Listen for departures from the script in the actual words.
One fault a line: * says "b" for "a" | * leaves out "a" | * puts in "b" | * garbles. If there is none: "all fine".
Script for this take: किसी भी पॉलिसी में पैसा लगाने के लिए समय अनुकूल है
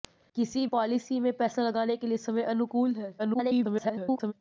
* leaves out "भी"
* garbles